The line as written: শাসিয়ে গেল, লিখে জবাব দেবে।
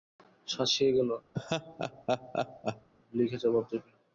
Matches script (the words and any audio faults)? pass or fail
fail